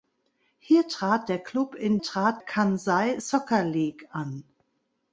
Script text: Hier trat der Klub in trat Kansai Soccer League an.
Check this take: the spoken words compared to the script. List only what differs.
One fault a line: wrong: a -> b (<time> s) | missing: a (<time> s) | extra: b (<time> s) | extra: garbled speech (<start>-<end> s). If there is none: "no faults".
no faults